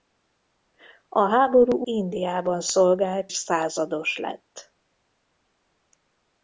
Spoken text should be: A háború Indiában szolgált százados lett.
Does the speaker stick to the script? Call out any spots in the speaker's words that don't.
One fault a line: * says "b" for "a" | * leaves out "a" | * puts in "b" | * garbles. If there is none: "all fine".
all fine